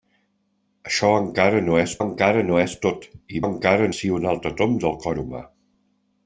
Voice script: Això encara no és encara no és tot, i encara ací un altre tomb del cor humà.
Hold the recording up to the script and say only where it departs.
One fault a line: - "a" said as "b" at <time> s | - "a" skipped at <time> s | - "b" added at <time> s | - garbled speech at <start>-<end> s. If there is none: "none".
none